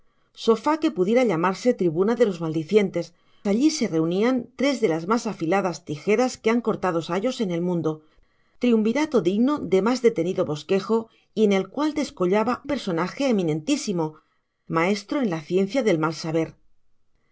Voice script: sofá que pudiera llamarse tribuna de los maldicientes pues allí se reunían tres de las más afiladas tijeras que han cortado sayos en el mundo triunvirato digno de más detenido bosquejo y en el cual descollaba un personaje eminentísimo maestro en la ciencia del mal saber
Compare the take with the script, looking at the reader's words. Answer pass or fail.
fail